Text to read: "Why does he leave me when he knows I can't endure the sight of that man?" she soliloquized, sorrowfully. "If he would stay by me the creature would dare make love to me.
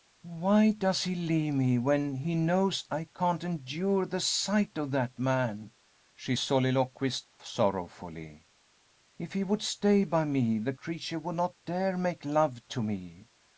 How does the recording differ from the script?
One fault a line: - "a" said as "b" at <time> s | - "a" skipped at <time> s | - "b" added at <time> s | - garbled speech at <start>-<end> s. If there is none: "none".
- "not" added at 11.4 s